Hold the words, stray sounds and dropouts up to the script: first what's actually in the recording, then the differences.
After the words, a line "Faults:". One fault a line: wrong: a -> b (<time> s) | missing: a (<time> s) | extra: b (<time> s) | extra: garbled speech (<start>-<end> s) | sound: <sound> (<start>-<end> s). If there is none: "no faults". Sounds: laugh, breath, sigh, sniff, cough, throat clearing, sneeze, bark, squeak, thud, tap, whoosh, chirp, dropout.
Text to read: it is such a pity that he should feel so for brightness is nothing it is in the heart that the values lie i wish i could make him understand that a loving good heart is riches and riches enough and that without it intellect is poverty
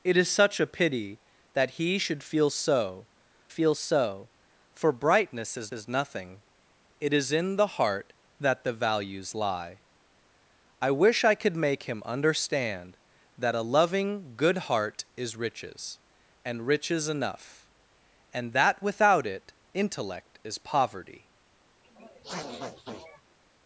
it is such a pity that he should feel so feel so for brightness is is nothing it is in the heart that the values lie i wish i could make him understand that a loving good heart is riches and riches enough and that without it intellect is poverty
Faults:
extra: feel so (3.5 s)
extra: is (5.7 s)
sound: sniff (21.8-23.4 s)